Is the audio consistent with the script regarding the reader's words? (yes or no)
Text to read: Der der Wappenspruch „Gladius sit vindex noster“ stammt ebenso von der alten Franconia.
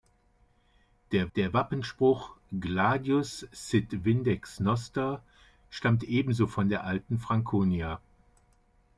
yes